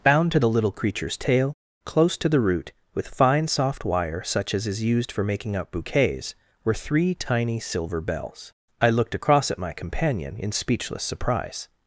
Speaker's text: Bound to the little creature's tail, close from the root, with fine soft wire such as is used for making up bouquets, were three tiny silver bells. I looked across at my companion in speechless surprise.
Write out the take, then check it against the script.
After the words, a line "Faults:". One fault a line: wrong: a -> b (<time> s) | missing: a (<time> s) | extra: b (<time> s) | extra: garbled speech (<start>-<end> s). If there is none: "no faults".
Bound to the little creature's tail, close to the root, with fine soft wire such as is used for making up bouquets, were three tiny silver bells. I looked across at my companion in speechless surprise.
Faults:
wrong: from -> to (2.2 s)